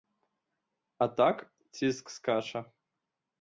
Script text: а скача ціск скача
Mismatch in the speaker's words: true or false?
true